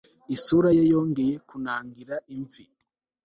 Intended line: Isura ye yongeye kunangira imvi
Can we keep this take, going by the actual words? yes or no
yes